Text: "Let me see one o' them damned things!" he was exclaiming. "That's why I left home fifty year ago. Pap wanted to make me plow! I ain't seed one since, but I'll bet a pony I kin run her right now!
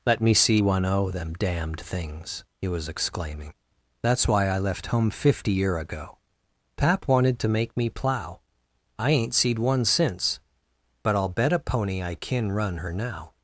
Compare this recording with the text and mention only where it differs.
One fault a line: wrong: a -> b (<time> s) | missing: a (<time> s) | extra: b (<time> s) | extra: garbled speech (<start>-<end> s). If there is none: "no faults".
missing: right (12.9 s)